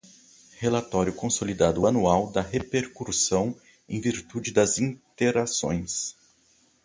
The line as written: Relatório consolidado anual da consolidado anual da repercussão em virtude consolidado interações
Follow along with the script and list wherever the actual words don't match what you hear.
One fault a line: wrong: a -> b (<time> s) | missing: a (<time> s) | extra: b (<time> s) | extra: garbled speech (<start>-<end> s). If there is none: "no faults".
missing: consolidado anual da (2.4 s)
wrong: consolidado -> das (4.5 s)